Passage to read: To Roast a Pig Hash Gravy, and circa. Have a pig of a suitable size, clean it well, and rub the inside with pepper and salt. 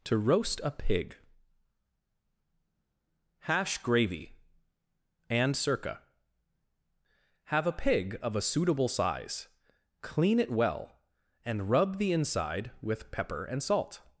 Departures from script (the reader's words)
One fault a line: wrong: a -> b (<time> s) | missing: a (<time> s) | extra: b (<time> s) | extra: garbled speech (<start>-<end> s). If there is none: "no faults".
no faults